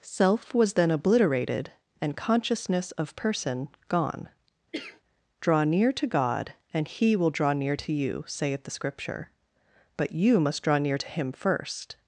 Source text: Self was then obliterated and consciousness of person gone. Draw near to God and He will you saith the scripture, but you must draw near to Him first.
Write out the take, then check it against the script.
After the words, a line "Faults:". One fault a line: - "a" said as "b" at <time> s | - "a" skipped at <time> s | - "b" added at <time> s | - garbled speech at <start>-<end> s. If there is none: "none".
Self was then obliterated and consciousness of person gone. Draw near to God and He will draw near to you saith the scripture, but you must draw near to Him first.
Faults:
- "draw near to" added at 7.3 s